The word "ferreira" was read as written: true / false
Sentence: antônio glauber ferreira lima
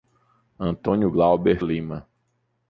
false